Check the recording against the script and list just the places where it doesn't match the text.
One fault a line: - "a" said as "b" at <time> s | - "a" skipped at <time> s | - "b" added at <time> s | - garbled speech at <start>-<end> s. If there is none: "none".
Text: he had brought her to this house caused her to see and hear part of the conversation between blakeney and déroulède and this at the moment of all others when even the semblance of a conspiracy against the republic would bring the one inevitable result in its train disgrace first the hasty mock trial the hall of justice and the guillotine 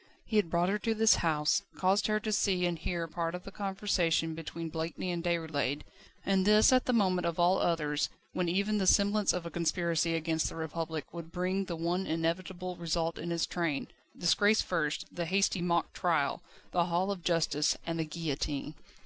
none